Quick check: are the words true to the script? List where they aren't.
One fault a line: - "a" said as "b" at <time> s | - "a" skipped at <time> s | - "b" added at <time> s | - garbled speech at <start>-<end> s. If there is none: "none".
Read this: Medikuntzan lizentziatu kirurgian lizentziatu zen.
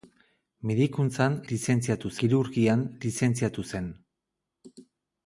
none